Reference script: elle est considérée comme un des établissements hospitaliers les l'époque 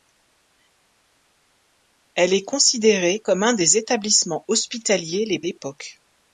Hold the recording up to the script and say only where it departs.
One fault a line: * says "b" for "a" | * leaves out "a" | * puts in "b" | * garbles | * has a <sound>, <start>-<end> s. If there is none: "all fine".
all fine